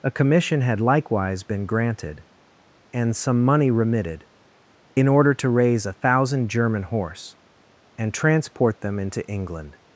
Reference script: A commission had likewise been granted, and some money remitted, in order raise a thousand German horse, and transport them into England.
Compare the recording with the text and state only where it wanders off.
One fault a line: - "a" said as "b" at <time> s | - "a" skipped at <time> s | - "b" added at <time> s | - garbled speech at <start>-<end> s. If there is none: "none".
- "to" added at 5.3 s